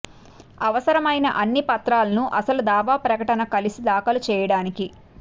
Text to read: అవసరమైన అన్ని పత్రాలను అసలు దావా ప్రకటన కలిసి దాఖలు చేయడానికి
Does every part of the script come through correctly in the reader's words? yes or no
yes